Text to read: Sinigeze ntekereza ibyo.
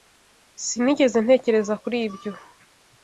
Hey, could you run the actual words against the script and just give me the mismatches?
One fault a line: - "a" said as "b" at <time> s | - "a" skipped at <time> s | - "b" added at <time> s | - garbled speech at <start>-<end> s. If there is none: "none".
- "kuri" added at 1.8 s